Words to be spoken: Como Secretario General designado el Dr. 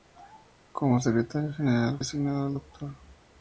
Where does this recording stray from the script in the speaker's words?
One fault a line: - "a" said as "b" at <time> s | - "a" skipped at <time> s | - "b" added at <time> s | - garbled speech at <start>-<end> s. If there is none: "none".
none